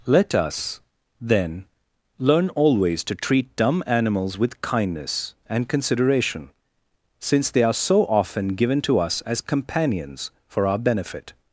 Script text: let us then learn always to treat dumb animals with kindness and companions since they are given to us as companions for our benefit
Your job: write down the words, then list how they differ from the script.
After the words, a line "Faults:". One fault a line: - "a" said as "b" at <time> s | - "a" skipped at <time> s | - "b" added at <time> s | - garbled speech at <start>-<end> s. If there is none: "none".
let us then learn always to treat dumb animals with kindness and consideration since they are so often given to us as companions for our benefit
Faults:
- "companions" said as "consideration" at 5.7 s
- "so often" added at 7.7 s